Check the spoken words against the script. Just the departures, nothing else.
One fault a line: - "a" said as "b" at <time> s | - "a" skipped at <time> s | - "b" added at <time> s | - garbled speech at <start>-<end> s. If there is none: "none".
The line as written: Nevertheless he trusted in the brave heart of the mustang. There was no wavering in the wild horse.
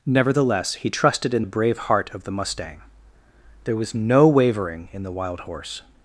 none